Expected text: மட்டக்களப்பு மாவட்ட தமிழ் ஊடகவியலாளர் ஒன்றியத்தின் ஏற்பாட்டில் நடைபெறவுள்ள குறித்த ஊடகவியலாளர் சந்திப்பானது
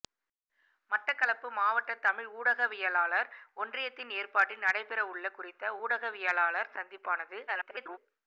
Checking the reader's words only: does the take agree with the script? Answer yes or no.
no